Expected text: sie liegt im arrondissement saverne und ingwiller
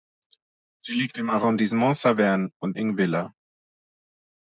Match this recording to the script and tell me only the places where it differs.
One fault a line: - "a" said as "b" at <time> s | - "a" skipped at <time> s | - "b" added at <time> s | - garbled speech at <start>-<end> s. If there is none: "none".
none